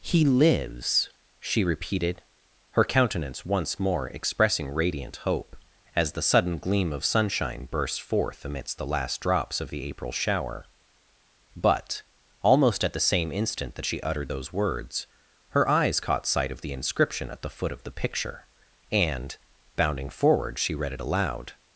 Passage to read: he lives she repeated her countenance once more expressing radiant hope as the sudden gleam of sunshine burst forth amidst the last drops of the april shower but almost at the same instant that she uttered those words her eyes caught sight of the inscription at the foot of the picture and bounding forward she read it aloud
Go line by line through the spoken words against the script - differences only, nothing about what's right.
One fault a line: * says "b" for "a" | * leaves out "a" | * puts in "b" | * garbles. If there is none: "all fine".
all fine